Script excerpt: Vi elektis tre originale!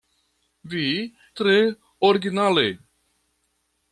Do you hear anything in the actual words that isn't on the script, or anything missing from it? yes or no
yes